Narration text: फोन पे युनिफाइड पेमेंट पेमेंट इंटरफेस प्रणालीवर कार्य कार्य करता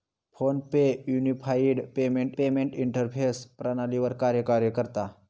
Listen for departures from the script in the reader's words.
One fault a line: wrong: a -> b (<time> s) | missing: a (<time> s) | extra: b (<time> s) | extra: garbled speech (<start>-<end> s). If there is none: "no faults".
no faults